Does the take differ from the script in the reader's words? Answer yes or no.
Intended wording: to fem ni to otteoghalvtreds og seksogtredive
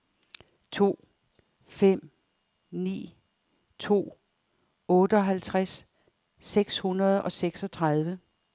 yes